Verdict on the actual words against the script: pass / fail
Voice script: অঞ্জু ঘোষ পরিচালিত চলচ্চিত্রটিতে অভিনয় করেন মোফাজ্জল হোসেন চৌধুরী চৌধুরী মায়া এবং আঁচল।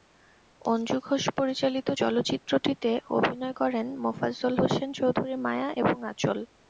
fail